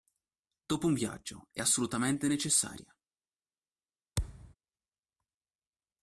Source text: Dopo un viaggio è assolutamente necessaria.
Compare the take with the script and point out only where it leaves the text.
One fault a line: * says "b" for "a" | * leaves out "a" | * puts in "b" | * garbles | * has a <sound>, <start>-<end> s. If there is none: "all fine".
* has a thud, 4.2-4.5 s